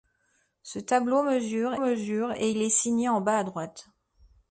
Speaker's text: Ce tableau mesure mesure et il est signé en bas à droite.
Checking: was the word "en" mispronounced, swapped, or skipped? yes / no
no